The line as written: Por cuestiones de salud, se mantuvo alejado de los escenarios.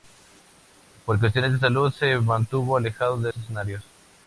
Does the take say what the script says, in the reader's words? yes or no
no